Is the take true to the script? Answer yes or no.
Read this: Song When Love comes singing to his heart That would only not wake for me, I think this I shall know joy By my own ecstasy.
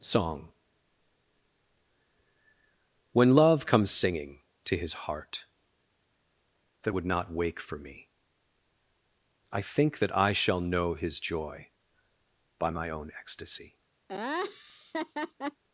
no